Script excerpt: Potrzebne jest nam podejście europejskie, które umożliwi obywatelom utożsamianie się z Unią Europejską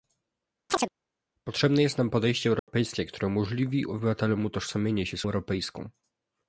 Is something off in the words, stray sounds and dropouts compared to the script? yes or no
yes